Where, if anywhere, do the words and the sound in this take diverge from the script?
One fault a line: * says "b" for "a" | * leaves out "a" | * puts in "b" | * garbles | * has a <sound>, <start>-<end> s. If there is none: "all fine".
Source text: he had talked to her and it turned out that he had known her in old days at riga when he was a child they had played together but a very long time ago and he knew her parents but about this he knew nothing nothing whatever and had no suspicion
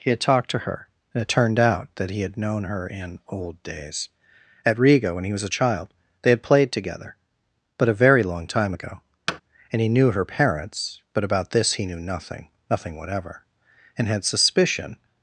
* has a thud, 9.3-9.4 s
* leaves out "no"